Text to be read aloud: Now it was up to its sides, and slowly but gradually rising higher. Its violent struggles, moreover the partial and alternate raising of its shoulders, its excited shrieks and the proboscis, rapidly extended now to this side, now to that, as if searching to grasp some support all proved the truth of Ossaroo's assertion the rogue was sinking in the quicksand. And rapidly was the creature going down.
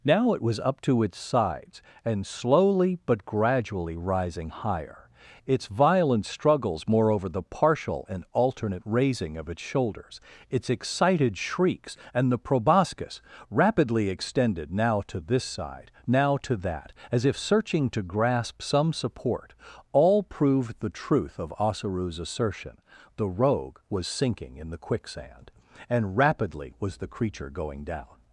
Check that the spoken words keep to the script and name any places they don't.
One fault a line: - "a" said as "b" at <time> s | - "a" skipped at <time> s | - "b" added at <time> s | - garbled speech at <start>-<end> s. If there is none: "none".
none